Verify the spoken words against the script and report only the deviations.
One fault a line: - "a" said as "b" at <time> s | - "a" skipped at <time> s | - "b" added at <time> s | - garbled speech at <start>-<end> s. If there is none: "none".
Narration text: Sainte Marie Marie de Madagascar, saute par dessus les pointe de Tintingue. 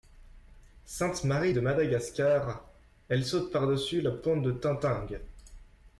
- "Marie" skipped at 1.5 s
- "elle" added at 3.1 s
- "les" said as "la" at 4.0 s